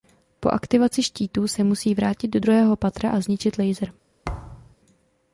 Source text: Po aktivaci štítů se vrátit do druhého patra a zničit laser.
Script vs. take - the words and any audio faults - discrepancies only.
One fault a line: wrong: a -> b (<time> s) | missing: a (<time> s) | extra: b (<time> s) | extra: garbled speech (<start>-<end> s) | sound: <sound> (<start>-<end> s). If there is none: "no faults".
extra: musí (1.6 s)
sound: thud (4.2-4.8 s)